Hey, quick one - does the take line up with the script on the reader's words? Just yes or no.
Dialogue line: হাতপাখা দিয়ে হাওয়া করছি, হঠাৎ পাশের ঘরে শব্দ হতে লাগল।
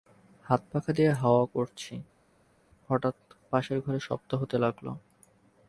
yes